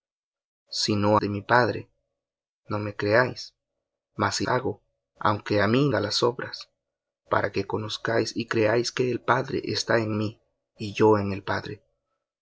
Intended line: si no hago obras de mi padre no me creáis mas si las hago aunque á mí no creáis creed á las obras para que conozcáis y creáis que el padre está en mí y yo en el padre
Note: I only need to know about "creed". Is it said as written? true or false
false